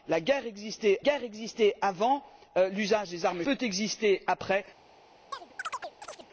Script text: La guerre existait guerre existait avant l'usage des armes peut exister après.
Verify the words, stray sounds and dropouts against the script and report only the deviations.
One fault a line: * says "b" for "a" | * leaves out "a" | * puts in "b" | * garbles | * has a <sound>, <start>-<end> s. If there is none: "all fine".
* has a chirp, 5.3-6.3 s